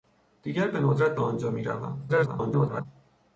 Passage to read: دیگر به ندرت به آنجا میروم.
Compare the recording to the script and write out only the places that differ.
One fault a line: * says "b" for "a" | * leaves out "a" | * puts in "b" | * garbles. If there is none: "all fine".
* garbles